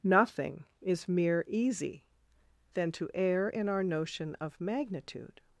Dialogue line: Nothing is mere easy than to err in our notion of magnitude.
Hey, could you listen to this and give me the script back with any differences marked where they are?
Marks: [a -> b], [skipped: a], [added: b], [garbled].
Nothing is mere easy than to err in our notion of magnitude.